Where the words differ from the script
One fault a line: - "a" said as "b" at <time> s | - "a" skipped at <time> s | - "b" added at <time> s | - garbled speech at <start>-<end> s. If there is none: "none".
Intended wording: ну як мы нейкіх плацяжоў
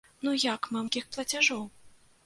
none